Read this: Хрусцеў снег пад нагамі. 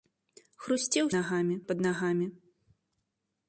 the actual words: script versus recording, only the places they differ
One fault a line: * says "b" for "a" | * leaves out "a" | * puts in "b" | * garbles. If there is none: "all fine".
* says "нагамі" for "снег"